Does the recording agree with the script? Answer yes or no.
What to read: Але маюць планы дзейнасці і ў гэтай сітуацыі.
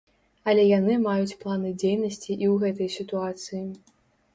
no